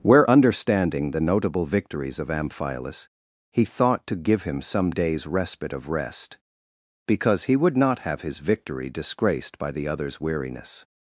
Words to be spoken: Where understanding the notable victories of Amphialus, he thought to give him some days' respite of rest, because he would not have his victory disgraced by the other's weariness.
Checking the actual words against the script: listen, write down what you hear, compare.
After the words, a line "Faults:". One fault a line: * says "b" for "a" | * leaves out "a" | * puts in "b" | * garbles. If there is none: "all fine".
Where understanding the notable victories of Amphialus, he thought to give him some days' respite of rest, because he would not have his victory disgraced by the other's weariness.
Faults:
all fine